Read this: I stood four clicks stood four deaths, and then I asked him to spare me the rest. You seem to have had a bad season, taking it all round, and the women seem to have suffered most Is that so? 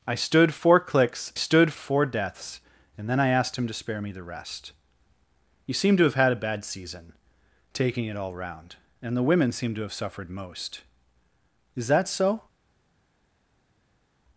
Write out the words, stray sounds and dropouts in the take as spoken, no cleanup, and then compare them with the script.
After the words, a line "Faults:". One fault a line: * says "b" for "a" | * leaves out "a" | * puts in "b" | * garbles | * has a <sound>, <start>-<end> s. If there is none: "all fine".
I stood four clicks stood four deaths, and then I asked him to spare me the rest. You seem to have had a bad season, taking it all round, and the women seem to have suffered most Is that so?
Faults:
all fine